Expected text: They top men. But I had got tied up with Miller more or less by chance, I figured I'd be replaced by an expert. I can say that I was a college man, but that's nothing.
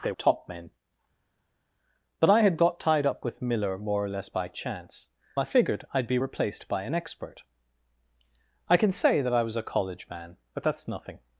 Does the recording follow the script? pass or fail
pass